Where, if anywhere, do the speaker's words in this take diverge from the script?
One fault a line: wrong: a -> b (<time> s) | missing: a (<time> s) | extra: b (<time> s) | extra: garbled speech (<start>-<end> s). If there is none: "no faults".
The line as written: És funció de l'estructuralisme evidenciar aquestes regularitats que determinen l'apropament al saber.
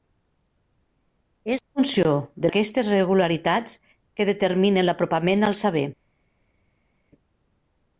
missing: l'estructuralisme evidenciar (2.5 s)